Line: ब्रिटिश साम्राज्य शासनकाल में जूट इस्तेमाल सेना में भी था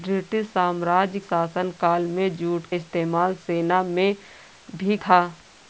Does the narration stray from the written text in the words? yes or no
no